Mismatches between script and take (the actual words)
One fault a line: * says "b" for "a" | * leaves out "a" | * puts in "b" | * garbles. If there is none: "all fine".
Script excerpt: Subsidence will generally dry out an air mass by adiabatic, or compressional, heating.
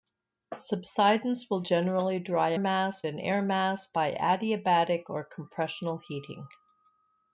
* says "mass" for "out"